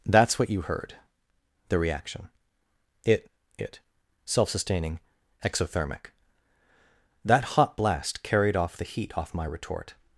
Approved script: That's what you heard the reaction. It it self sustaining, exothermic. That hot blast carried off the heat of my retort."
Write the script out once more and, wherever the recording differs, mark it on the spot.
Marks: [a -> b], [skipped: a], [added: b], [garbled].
That's what you heard the reaction. It it self sustaining, exothermic. That hot blast carried off the heat [of -> off] my retort."